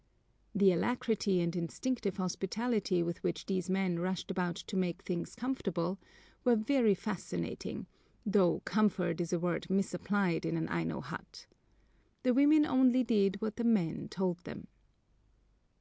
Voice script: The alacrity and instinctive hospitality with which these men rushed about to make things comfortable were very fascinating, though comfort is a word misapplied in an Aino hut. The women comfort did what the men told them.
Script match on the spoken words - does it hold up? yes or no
no